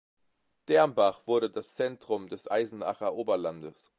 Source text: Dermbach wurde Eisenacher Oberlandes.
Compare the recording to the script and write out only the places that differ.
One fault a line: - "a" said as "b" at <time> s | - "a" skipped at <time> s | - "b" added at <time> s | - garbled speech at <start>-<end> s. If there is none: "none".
- "das Zentrum des" added at 1.5 s